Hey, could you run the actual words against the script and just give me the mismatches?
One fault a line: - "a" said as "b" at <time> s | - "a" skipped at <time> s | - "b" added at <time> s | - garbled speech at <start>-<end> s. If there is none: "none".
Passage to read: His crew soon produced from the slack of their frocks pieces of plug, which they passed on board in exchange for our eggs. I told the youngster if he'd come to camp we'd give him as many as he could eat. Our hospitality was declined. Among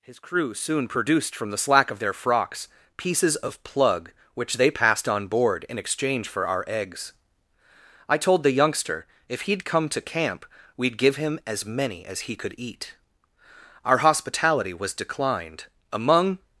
none